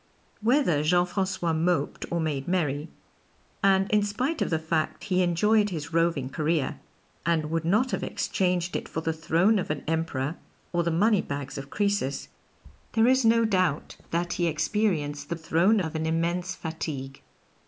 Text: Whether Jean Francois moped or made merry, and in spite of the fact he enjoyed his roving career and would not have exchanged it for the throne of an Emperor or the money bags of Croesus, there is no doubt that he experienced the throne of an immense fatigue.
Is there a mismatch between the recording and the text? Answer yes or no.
no